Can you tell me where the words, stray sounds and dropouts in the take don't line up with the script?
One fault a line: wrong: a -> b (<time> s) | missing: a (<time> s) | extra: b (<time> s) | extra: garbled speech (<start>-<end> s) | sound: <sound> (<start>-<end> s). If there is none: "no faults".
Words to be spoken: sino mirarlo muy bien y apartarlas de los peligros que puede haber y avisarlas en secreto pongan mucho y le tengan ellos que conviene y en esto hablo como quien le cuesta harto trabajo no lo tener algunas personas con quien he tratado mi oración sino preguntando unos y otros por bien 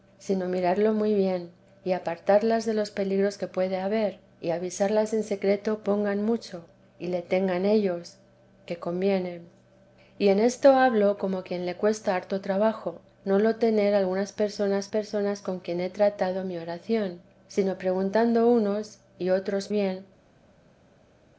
extra: personas (14.9 s)
missing: por (19.7 s)